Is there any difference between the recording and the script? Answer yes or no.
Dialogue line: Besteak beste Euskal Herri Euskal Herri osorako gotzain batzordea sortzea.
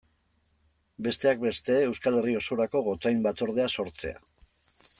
yes